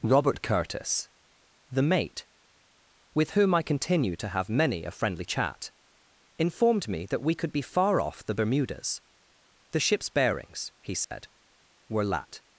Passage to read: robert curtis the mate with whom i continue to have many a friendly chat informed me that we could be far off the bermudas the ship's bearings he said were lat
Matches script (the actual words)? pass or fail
pass